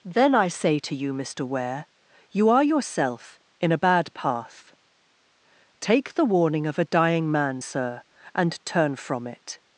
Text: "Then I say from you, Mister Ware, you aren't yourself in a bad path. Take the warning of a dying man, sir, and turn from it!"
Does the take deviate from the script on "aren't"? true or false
true